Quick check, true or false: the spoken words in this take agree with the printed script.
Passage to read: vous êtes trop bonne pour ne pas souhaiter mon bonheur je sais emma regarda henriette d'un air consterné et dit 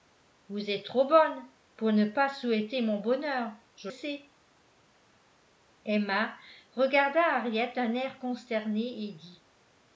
true